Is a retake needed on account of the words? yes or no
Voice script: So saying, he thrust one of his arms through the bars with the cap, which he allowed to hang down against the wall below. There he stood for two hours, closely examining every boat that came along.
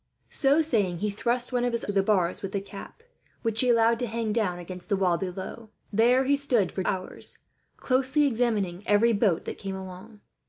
yes